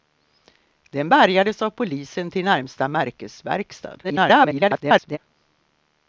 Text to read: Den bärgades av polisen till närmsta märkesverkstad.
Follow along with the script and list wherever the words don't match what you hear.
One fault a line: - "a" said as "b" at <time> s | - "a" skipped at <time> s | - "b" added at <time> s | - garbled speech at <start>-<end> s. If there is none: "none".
- garbled speech at 4.0-5.2 s